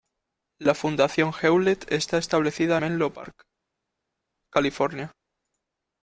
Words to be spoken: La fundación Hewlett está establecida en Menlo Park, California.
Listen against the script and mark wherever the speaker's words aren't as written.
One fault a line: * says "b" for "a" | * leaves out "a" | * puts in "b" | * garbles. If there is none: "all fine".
* leaves out "en"